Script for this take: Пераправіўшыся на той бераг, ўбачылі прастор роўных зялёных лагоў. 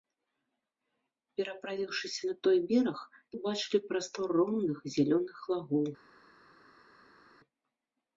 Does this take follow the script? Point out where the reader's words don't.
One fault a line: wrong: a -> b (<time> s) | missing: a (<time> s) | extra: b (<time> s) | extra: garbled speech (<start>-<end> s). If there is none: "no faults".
no faults